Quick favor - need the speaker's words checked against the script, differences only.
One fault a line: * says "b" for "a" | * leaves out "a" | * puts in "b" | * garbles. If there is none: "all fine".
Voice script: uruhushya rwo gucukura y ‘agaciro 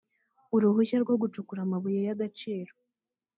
* puts in "amabuye"